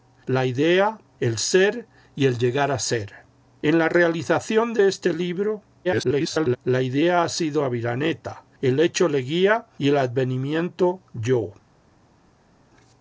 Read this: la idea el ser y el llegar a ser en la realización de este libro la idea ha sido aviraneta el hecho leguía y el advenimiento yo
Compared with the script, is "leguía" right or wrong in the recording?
right